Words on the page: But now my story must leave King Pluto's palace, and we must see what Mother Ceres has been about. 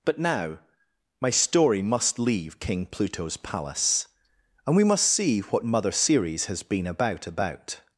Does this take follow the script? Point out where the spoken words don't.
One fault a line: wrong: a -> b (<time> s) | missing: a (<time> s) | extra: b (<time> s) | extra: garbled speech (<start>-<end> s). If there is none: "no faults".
extra: about (7.3 s)